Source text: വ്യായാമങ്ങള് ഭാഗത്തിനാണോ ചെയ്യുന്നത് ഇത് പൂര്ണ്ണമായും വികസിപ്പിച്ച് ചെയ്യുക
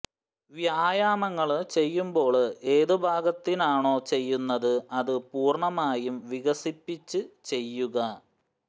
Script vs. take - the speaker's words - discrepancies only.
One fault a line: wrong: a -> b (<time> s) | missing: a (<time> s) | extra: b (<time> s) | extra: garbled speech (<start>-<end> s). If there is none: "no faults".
extra: ചെയ്യുമ്പോള് ഏത് (1.7 s)
wrong: ഇത് -> അത് (5.0 s)